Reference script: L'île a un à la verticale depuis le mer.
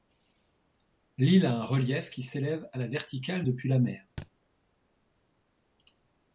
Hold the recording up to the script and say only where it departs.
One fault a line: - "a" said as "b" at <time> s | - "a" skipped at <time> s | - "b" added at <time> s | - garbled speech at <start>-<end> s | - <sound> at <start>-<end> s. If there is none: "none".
- "relief qui s'élève" added at 1.6 s
- "le" said as "la" at 3.7 s
- thud at 4.2-4.3 s